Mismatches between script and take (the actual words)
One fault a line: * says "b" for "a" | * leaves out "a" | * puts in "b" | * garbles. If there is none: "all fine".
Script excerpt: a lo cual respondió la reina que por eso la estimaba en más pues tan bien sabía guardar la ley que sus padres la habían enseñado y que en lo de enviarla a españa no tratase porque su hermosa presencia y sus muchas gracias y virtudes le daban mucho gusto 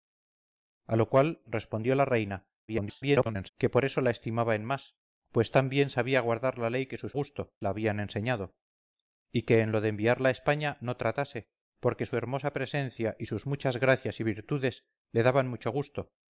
* garbles
* says "gusto" for "padres"